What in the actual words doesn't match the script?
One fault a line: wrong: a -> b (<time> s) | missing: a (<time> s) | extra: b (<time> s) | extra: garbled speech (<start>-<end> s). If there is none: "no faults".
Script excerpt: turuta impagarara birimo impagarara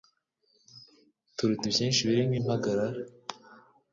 wrong: impagarara -> ibyinshi (1.7 s)